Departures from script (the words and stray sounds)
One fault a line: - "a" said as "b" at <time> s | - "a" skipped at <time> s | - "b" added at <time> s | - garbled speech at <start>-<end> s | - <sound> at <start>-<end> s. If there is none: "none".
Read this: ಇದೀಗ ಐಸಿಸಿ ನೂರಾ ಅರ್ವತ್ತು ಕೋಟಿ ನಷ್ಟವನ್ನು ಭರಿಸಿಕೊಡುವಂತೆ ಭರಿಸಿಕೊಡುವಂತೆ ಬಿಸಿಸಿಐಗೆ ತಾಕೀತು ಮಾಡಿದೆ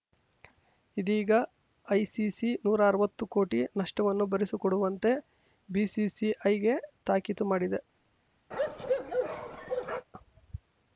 - "ಭರಿಸಿಕೊಡುವಂತೆ" skipped at 5.1 s
- bark at 8.5-10.1 s